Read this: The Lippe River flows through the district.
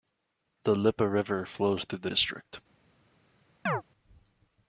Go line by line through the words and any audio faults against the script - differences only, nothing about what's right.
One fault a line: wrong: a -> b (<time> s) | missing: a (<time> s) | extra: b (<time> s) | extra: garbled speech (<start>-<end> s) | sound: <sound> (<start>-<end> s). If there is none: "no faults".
sound: chirp (3.7-3.8 s)